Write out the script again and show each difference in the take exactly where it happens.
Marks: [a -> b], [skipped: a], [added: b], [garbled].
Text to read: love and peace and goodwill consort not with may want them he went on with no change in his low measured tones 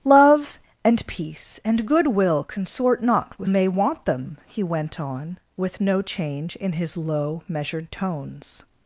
love and peace and goodwill consort not with may want them he went on with no change in his low measured tones